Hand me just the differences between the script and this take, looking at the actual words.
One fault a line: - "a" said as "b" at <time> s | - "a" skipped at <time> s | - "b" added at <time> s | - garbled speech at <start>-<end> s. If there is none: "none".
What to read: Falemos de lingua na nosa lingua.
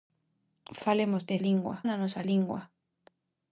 none